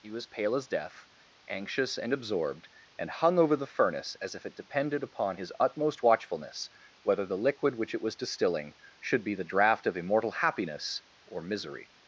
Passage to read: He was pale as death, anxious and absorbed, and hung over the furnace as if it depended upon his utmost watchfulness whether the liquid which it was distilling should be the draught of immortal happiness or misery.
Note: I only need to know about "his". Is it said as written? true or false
true